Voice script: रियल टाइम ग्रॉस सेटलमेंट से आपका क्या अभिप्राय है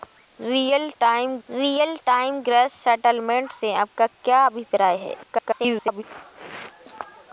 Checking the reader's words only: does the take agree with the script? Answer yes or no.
no